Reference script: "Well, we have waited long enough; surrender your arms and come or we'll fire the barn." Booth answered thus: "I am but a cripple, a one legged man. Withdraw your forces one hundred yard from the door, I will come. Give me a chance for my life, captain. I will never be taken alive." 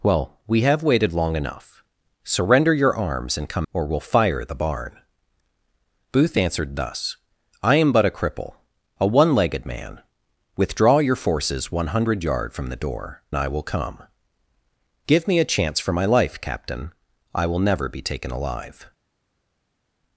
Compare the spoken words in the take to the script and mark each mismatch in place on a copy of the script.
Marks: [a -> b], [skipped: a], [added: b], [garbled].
"Well, we have waited long enough; surrender your arms and come or we'll fire the barn." Booth answered thus: "I am but a cripple, a one legged man. Withdraw your forces one hundred yard from the door, I will come. Give me a chance for my life, captain. I will never be taken alive."